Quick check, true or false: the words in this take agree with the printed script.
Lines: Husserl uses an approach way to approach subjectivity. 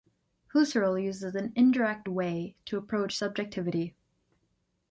false